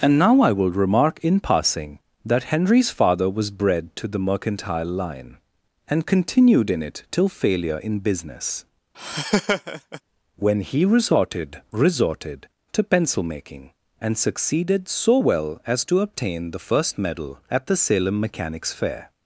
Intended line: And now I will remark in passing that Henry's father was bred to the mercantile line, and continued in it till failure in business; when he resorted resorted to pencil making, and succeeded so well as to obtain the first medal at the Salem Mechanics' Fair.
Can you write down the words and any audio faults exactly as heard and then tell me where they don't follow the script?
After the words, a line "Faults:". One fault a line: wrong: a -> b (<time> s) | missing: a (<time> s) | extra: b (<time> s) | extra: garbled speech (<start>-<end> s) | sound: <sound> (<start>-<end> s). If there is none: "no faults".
And now I will remark in passing that Henry's father was bred to the mercantile line, and continued in it till failure in business; when he resorted resorted to pencil making, and succeeded so well as to obtain the first medal at the Salem Mechanics' Fair.
Faults:
sound: laugh (8.9-10.0 s)